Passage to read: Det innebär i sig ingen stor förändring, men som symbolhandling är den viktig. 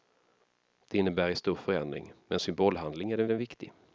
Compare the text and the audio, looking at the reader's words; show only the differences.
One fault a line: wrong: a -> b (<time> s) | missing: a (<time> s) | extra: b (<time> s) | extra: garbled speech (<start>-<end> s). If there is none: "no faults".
missing: sig ingen (1.4 s)
missing: som (2.4 s)
extra: den (3.3 s)